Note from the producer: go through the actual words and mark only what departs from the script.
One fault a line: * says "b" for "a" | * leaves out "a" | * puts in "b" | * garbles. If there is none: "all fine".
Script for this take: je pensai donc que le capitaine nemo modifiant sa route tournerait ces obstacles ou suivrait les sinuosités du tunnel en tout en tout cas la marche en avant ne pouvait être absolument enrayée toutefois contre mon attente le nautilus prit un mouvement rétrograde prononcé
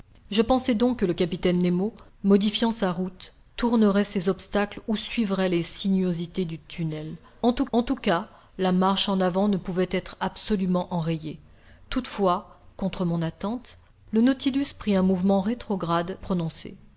all fine